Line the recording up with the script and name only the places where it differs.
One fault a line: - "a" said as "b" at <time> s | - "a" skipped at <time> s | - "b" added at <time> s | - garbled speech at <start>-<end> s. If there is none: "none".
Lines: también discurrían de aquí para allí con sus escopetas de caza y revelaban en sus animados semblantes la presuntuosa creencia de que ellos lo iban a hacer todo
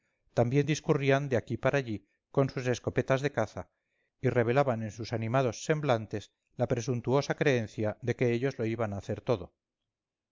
none